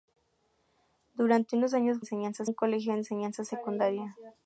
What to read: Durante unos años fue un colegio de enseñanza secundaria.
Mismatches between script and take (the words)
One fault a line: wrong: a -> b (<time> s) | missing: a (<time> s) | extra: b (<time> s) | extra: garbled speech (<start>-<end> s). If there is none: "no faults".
wrong: fue -> enseñanza (2.0 s)